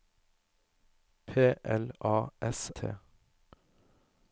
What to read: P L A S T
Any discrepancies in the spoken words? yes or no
no